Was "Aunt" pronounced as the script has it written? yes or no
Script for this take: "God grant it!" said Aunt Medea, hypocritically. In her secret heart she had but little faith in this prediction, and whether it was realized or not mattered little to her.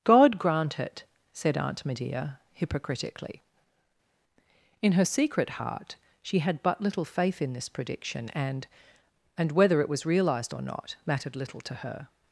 yes